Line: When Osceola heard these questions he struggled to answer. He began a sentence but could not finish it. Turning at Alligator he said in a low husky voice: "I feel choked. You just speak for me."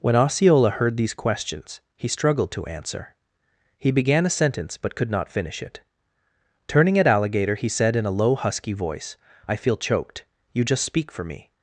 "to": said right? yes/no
yes